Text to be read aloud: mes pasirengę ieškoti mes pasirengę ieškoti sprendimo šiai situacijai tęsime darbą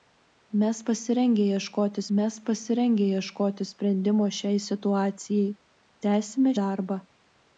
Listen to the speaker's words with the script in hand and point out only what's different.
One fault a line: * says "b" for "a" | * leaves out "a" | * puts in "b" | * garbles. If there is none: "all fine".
all fine